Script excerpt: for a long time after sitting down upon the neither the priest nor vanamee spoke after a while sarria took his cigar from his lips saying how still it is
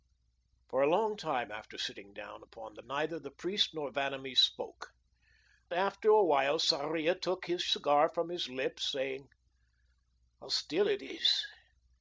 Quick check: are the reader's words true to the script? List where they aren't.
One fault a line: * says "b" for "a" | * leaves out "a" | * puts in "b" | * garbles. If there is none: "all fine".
all fine